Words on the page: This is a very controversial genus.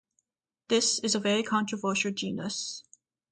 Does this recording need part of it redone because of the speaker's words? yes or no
no